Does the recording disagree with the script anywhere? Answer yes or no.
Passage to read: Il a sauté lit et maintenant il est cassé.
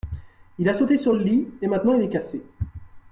yes